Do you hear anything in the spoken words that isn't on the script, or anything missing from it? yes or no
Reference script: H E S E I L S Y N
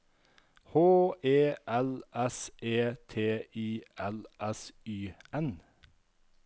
yes